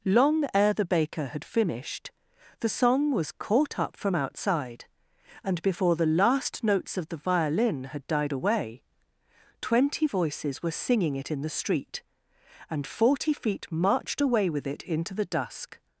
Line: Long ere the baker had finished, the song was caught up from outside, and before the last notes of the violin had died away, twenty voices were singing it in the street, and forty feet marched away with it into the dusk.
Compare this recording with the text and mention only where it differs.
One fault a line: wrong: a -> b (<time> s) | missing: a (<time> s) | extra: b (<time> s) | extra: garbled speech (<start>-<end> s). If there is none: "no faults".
no faults